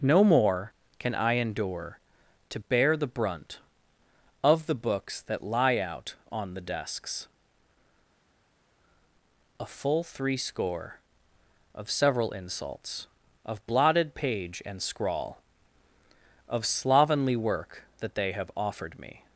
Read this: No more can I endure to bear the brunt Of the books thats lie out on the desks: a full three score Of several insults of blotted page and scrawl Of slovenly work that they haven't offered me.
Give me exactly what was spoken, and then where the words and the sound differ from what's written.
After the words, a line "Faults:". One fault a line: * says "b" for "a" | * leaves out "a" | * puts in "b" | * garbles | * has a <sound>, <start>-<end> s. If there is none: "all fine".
No more can I endure to bear the brunt Of the books that lie out on the desks: a full three score Of several insults of blotted page and scrawl Of slovenly work that they have offered me.
Faults:
* says "that" for "thats"
* says "have" for "haven't"